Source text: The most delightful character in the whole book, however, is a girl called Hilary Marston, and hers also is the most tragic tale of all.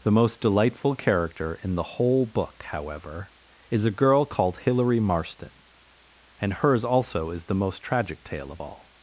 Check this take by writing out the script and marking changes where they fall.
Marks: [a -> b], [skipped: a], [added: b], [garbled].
The most delightful character in the whole book, however, is a girl called Hilary Marston, and hers also is the most tragic tale of all.